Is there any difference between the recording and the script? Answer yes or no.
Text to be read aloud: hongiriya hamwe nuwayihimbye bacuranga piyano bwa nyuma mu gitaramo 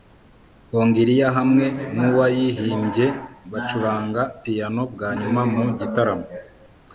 no